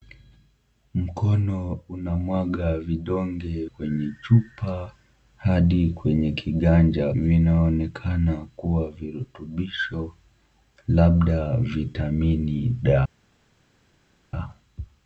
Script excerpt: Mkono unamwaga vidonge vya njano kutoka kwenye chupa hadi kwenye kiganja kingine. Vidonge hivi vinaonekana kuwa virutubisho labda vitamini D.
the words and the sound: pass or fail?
fail